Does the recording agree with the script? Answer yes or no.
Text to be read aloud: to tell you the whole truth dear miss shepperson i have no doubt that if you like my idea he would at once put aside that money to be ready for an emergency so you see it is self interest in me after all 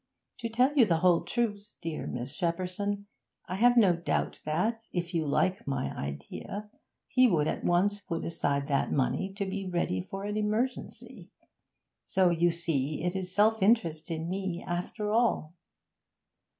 yes